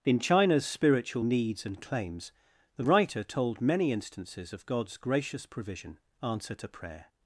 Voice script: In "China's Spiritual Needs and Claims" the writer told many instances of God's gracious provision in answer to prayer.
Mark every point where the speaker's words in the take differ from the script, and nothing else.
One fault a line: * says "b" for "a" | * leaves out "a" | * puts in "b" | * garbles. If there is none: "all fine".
* leaves out "in"